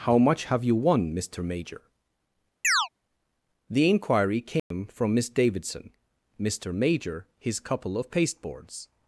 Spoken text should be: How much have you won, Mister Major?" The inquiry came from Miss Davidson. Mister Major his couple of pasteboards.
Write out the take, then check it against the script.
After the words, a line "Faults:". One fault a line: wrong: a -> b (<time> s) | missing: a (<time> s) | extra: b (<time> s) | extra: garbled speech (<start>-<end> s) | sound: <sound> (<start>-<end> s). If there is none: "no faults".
How much have you won, Mister Major?" The inquiry came from Miss Davidson. Mister Major his couple of pasteboards.
Faults:
sound: chirp (2.6-2.9 s)
sound: dropout (4.6-4.7 s)